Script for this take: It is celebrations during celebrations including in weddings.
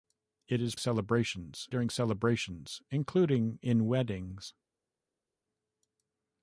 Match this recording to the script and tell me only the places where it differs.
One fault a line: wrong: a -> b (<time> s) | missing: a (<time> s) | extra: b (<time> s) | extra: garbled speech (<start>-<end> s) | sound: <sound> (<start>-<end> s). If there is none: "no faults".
no faults